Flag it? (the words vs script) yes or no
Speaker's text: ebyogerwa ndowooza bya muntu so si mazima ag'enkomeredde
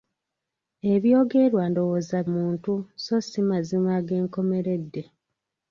yes